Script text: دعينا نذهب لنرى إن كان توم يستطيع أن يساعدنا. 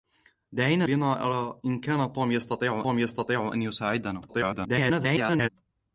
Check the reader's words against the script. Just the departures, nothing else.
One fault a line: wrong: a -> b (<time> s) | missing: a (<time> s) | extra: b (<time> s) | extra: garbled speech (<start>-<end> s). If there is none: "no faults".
missing: نذهب (0.8 s)
extra: توم يستطيع (2.8 s)
extra: garbled speech (4.3-5.5 s)